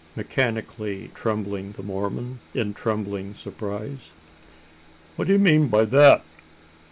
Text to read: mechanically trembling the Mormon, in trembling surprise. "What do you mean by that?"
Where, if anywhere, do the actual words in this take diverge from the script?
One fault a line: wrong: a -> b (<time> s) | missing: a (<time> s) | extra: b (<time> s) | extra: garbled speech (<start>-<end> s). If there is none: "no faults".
no faults